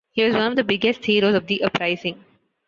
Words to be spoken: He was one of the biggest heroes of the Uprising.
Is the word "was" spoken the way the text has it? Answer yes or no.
yes